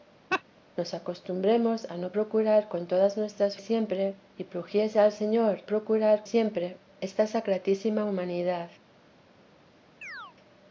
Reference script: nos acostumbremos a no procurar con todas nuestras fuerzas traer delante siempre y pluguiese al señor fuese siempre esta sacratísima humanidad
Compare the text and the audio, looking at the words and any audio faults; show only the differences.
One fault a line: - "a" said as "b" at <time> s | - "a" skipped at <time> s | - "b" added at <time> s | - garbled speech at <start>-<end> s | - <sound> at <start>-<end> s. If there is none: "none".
- laugh at 0.3-0.4 s
- "fuerzas traer delante" skipped at 3.6 s
- "fuese" said as "procurar" at 5.7 s
- chirp at 10.0-10.4 s